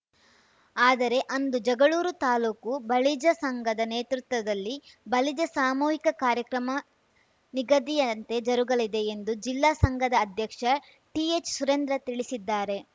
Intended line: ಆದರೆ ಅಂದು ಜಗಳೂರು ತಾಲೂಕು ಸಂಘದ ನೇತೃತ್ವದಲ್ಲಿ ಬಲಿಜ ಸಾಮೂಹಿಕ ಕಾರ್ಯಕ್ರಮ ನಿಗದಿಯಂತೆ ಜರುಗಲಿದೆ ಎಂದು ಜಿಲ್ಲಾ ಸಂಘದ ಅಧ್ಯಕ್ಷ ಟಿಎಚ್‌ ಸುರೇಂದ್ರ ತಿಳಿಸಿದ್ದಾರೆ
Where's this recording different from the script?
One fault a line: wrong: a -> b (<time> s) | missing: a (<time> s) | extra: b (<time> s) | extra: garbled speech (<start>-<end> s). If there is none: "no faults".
extra: ಬಲಿಜ (2.9 s)